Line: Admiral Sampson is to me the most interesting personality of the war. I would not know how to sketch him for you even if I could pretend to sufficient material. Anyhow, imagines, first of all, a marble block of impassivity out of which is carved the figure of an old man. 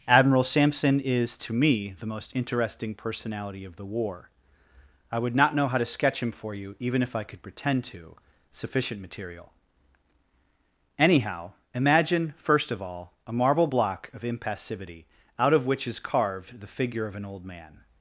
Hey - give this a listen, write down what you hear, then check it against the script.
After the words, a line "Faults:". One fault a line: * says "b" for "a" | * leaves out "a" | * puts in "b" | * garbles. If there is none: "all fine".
Admiral Sampson is to me the most interesting personality of the war. I would not know how to sketch him for you even if I could pretend to sufficient material. Anyhow, imagine, first of all, a marble block of impassivity out of which is carved the figure of an old man.
Faults:
* says "imagine" for "imagines"